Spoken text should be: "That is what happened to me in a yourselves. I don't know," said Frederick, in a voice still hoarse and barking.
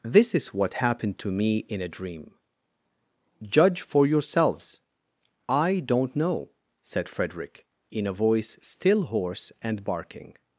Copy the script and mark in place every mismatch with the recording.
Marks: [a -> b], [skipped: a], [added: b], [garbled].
["That -> This] is what happened to me in a [added: dream Judge for] yourselves. I don't know," said Frederick, in a voice still hoarse and barking.